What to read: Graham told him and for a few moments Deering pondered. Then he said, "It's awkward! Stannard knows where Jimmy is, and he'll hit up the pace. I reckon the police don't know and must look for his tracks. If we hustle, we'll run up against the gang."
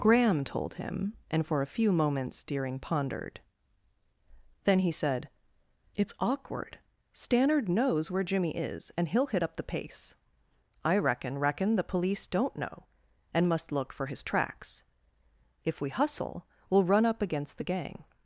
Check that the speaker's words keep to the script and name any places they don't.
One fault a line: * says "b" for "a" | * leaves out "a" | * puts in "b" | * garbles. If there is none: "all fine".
* puts in "reckon"